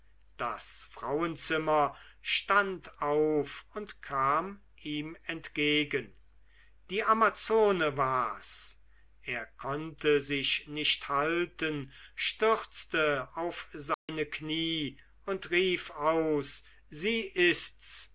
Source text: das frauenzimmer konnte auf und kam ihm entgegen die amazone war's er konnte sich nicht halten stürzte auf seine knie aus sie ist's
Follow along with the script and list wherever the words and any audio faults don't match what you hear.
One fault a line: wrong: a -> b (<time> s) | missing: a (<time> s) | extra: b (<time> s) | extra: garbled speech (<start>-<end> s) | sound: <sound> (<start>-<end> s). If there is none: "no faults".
wrong: konnte -> stand (2.2 s)
sound: dropout (13.9-14.1 s)
extra: und rief (15.2 s)